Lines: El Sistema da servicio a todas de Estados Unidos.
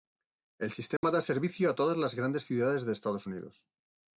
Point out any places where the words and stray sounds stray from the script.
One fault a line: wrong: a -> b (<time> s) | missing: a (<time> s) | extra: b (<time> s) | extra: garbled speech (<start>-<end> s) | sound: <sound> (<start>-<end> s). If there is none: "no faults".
sound: dropout (1.0-1.0 s)
extra: las grandes ciudades (1.9 s)